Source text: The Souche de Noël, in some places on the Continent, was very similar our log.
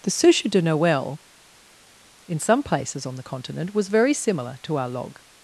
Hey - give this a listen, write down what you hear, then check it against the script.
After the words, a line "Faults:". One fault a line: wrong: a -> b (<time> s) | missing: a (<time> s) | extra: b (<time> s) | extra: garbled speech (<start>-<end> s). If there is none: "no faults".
The Souche de Noël, in some places on the Continent, was very similar to our log.
Faults:
extra: to (4.6 s)